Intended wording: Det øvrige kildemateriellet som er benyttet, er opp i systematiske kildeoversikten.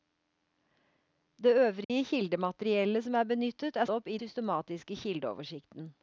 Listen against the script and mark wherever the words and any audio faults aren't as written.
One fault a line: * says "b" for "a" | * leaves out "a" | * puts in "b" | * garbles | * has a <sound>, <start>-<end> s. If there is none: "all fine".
* has a dropout, 1.8-1.9 s